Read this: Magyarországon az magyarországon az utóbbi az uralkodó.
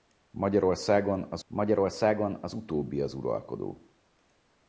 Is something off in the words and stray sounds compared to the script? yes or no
no